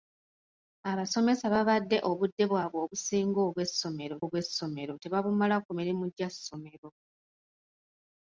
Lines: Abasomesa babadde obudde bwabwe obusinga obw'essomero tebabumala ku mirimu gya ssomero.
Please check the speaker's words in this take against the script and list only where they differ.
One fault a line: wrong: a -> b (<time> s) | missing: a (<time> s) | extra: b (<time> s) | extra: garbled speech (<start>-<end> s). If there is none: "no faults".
extra: obw'essomero (4.2 s)